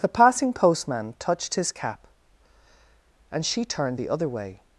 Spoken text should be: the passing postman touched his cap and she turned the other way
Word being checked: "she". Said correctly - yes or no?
yes